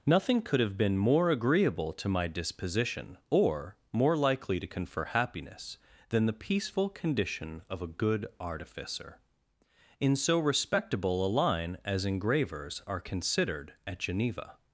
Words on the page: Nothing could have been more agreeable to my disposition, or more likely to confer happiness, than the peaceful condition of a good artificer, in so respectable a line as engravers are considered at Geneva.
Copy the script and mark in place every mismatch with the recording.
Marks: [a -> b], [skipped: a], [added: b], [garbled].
Nothing could have been more agreeable to my disposition, or more likely to confer happiness, than the peaceful condition of a good artificer, in so respectable a line as engravers are considered at Geneva.